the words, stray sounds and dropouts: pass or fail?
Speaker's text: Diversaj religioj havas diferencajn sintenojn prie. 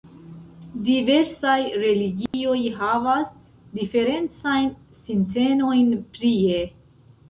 fail